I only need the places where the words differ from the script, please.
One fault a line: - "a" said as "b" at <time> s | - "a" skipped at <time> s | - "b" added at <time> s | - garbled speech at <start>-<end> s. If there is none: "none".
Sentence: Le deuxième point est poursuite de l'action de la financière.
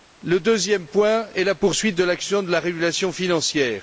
- "la" added at 1.4 s
- "régulation" added at 2.6 s